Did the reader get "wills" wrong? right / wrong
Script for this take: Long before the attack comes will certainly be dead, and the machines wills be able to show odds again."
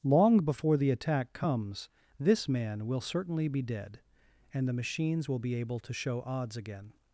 wrong